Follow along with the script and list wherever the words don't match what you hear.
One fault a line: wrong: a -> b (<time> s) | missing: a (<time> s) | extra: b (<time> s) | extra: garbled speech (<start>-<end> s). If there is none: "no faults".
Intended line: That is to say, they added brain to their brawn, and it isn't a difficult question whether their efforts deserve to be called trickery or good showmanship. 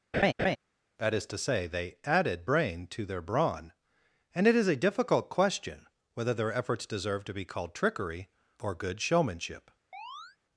wrong: isn't -> is (4.5 s)